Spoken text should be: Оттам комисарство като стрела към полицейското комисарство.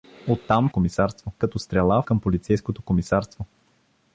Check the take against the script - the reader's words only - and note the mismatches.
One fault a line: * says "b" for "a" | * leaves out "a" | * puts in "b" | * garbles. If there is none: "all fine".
all fine